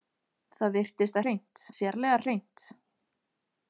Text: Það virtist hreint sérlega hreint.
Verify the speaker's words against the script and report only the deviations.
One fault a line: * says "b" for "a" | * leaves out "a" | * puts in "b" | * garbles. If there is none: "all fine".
all fine